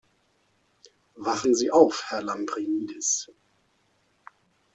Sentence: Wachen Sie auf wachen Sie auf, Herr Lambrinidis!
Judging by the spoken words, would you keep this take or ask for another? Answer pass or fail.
fail